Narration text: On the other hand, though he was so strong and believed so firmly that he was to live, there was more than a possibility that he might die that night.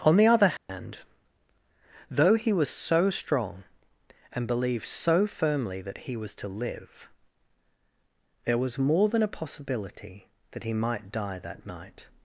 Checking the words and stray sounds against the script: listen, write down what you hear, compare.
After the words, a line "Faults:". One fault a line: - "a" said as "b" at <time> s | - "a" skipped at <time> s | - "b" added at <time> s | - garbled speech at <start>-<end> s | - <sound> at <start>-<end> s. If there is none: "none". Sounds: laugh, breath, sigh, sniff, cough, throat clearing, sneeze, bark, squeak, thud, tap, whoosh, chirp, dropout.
On the other hand, though he was so strong and believed so firmly that he was to live, there was more than a possibility that he might die that night.
Faults:
- dropout at 0.6-0.7 s